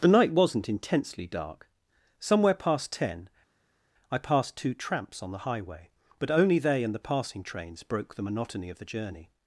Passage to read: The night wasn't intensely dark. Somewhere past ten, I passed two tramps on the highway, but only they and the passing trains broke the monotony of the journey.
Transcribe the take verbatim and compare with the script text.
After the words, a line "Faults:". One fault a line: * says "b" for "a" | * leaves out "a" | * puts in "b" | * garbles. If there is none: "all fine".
The night wasn't intensely dark. Somewhere past ten, I passed two tramps on the highway, but only they and the passing trains broke the monotony of the journey.
Faults:
all fine